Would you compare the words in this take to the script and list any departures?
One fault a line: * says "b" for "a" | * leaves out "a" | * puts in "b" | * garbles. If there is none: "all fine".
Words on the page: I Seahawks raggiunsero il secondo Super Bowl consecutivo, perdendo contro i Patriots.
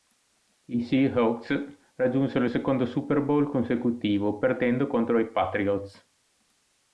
all fine